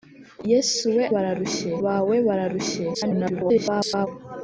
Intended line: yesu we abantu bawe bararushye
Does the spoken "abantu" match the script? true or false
false